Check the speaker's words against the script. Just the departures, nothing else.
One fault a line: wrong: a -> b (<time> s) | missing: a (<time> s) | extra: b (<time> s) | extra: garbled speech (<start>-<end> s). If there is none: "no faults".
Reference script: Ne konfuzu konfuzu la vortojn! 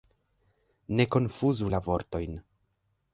missing: konfuzu (1.7 s)